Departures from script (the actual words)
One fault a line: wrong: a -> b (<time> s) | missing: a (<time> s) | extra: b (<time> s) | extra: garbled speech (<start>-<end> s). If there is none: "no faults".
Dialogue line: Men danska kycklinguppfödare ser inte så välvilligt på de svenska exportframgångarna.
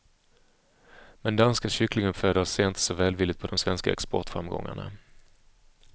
no faults